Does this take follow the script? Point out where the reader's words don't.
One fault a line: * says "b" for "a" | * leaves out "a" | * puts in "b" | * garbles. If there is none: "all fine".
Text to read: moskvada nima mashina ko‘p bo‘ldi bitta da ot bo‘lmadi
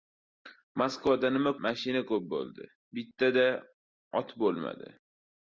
all fine